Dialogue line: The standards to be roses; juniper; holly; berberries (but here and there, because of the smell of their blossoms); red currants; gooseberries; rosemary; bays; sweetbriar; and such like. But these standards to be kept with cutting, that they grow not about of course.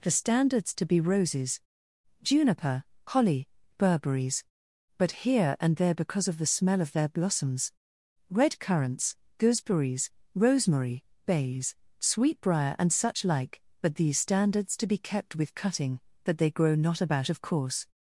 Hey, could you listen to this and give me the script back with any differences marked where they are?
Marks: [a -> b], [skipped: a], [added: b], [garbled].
The standards to be roses; juniper; holly; berberries (but here and there, because of the smell of their blossoms); red currants; gooseberries; rosemary; bays; sweetbriar; and such like. But these standards to be kept with cutting, that they grow not about of course.